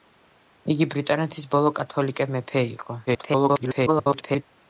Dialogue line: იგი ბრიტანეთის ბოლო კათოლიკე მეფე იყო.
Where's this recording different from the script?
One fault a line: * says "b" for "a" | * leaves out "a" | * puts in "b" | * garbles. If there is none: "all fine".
* garbles